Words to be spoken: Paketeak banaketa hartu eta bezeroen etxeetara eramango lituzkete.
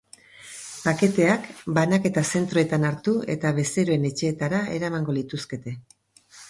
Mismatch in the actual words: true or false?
true